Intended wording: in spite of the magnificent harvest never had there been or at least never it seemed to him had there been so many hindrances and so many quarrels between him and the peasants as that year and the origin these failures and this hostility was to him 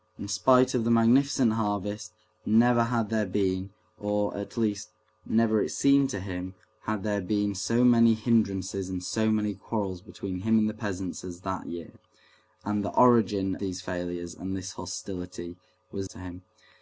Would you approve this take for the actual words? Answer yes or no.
yes